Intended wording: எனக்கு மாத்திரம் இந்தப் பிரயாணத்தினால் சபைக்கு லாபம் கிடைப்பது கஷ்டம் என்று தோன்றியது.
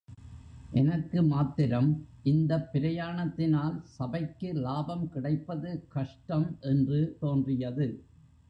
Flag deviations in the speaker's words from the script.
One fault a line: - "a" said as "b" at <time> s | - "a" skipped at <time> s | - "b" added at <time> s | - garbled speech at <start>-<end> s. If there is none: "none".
none